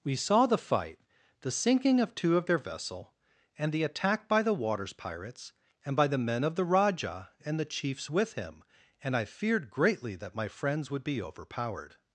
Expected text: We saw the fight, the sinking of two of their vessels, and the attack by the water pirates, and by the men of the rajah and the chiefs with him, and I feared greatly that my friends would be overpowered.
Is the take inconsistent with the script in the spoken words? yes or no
yes